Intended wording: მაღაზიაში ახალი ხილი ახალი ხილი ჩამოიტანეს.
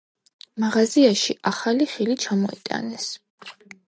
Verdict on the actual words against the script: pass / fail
fail